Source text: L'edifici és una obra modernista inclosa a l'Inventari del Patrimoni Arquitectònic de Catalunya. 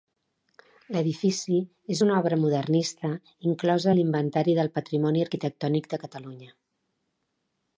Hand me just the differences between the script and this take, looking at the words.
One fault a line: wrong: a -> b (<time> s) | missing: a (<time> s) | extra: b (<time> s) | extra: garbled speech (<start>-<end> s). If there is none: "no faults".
no faults